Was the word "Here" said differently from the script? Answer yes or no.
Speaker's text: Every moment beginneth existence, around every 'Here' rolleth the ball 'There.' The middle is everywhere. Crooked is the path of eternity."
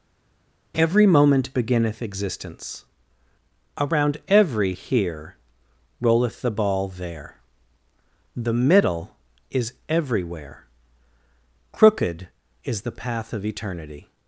no